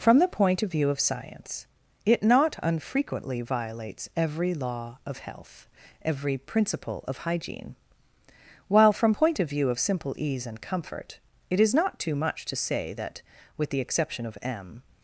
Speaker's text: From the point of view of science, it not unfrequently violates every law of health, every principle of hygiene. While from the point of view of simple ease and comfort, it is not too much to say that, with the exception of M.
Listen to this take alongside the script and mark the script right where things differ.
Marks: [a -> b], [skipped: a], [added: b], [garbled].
From the point of view of science, it not unfrequently violates every law of health, every principle of hygiene. While from [skipped: the] point of view of simple ease and comfort, it is not too much to say that, with the exception of M.